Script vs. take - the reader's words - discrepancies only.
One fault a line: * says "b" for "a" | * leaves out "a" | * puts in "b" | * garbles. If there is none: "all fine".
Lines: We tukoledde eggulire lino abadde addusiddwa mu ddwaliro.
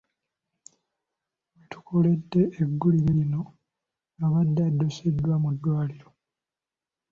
all fine